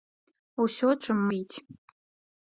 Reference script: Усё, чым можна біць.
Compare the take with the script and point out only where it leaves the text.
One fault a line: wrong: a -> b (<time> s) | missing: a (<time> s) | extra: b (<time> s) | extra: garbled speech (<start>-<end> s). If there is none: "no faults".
missing: можна (1.2 s)